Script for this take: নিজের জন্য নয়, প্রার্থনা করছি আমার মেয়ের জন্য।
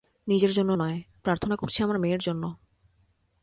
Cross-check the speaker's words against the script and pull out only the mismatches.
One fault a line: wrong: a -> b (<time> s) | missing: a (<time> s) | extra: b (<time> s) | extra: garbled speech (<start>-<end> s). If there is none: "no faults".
no faults